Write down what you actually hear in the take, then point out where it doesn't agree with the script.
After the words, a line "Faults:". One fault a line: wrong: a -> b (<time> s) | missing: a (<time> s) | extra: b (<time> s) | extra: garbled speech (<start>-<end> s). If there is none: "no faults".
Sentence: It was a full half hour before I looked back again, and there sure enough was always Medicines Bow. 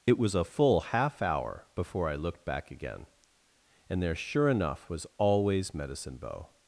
It was a full half hour before I looked back again, and there sure enough was always Medicine Bow.
Faults:
wrong: Medicines -> Medicine (5.7 s)